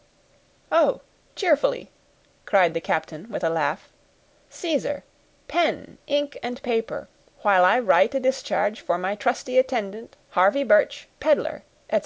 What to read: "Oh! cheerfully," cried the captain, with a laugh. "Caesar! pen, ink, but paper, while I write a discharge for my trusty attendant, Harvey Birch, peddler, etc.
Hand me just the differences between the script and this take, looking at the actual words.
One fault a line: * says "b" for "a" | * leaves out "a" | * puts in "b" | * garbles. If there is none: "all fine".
* says "and" for "but"